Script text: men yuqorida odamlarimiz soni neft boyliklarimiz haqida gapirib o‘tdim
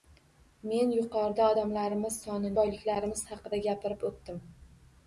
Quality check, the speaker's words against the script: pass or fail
fail